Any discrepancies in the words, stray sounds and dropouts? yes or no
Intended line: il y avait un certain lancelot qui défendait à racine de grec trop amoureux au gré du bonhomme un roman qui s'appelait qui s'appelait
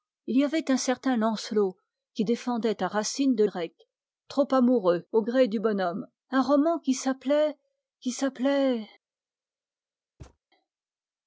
yes